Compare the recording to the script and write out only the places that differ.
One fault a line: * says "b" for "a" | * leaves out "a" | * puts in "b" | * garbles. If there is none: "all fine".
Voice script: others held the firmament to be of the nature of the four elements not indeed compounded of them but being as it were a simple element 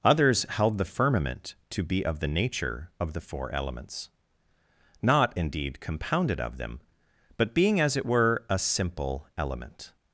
all fine